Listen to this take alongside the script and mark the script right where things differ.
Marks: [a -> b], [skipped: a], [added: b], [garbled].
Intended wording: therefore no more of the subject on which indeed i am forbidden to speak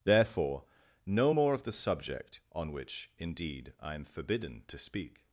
therefore no more of the subject on which indeed i am forbidden to speak